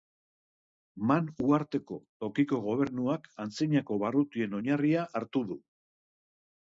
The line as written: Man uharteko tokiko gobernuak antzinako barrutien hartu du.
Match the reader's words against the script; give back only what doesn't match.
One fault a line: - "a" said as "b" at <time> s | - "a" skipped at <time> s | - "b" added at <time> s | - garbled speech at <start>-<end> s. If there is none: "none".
- "oinarria" added at 4.6 s